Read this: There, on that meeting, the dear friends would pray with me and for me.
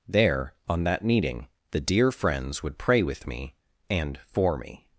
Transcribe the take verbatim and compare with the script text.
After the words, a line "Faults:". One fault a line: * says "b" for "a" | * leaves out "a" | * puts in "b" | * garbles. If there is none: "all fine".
There, on that meeting, the dear friends would pray with me and for me.
Faults:
all fine